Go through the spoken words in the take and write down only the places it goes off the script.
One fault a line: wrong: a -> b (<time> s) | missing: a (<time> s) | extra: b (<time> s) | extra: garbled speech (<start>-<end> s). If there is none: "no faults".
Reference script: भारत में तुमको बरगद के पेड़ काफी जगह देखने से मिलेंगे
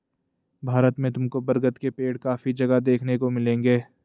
wrong: से -> को (3.2 s)